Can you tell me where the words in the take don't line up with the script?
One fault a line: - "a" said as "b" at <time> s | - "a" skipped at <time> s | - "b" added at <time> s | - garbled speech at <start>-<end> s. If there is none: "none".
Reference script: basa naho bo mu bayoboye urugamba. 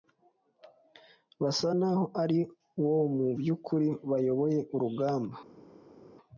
- "ari" added at 2.2 s
- "by'ukuri" added at 3.4 s